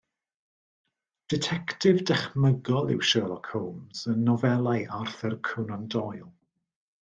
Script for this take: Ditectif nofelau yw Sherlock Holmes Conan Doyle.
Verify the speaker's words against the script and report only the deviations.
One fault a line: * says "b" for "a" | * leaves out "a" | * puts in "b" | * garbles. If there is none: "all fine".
* says "dychmygol" for "nofelau"
* puts in "yn nofelau Arthur"